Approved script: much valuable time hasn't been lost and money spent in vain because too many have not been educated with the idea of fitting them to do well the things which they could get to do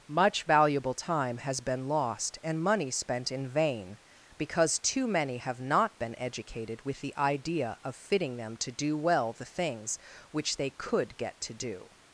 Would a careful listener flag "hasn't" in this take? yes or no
yes